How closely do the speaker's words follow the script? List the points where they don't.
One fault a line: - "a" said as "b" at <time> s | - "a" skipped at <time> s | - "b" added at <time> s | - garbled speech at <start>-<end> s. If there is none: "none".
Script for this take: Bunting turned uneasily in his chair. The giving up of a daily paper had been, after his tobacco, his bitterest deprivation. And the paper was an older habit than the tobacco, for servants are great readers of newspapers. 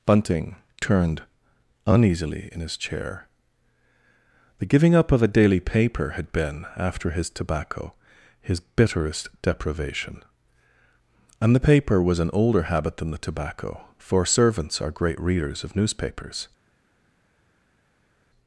none